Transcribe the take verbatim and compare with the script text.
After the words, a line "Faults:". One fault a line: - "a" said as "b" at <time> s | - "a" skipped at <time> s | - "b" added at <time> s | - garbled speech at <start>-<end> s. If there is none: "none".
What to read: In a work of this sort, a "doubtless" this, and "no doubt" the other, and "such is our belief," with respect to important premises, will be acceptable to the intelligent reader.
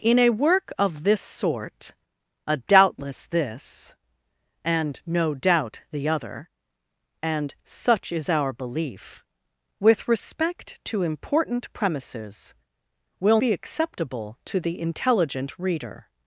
In a work of this sort, a "doubtless" this, and "no doubt" the other, and "such is our belief," with respect to important premises, will be acceptable to the intelligent reader.
Faults:
none